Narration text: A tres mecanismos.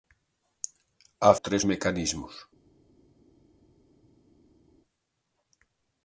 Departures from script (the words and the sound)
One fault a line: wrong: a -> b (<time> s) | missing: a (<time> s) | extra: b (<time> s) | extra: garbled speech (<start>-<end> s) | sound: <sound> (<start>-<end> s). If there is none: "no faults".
no faults